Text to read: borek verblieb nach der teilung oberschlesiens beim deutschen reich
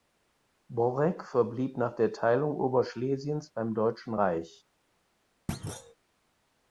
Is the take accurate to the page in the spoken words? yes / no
yes